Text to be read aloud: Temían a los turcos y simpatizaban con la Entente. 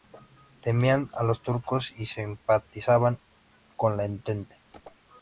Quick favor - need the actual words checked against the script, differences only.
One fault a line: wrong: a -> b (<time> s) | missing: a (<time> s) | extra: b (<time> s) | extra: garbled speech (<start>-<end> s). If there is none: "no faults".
no faults